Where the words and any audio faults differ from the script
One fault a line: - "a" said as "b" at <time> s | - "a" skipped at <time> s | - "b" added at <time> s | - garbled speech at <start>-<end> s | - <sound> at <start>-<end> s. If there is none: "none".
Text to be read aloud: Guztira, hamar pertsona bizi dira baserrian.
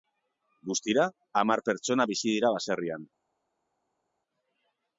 none